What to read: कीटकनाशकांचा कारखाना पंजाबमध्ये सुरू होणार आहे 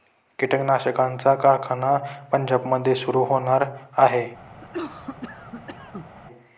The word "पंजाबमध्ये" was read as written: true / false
true